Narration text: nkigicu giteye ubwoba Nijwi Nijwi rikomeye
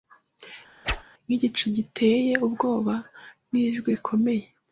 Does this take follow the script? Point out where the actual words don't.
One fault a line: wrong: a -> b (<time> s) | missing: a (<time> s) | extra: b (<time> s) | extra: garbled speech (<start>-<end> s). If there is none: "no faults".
missing: Nijwi (3.9 s)